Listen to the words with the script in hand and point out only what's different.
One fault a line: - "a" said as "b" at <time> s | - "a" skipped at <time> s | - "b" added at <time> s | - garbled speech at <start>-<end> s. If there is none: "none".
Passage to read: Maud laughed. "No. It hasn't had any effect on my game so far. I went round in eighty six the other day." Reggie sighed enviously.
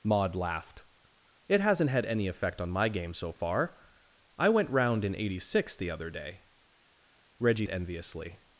- "No" skipped at 0.8 s
- "sighed" skipped at 7.7 s